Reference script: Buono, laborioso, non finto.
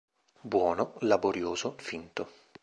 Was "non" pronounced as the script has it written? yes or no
no